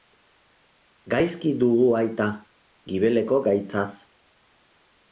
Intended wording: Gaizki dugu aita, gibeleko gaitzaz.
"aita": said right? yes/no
yes